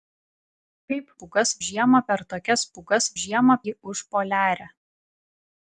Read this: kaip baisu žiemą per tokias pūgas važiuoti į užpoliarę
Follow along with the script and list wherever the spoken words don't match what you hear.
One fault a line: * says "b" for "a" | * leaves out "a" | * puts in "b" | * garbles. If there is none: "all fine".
* says "pūgas" for "baisu"
* says "žiemą" for "važiuoti"